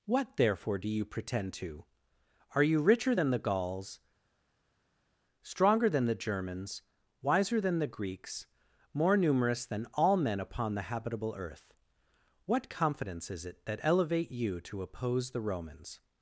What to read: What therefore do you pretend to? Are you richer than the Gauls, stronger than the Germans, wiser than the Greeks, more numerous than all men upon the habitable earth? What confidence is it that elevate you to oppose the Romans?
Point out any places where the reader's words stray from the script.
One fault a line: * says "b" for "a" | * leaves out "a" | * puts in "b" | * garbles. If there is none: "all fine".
all fine